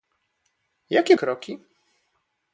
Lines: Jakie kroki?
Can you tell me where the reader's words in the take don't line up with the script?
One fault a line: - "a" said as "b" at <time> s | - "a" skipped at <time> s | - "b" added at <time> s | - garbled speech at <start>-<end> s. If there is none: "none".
none